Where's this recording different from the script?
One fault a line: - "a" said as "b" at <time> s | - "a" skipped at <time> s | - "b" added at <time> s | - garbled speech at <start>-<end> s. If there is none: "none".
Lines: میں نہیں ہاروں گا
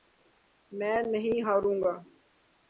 none